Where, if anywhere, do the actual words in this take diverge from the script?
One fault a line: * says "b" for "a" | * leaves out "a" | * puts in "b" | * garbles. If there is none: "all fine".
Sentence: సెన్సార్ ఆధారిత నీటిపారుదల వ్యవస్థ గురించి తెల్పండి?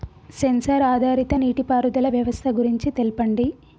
all fine